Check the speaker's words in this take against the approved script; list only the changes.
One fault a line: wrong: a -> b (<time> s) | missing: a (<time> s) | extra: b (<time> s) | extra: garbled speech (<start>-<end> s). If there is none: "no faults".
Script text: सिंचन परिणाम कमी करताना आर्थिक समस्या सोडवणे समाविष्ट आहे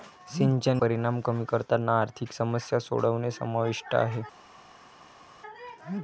no faults